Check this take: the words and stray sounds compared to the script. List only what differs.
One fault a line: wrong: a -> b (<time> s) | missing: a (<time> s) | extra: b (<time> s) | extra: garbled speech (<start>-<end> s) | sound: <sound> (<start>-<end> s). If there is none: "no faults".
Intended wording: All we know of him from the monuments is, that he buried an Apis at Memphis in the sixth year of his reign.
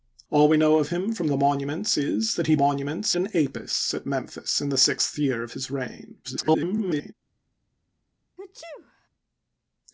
wrong: buried -> monuments (2.6 s)
extra: garbled speech (6.2-7.1 s)
sound: sneeze (8.4-9.1 s)